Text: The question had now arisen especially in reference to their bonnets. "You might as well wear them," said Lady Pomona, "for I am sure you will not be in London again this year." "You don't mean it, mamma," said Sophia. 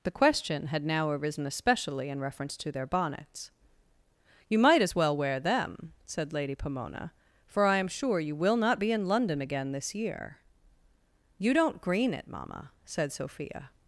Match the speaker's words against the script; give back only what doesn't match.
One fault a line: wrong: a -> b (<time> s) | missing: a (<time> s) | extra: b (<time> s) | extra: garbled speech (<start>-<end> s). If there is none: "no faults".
wrong: mean -> green (11.8 s)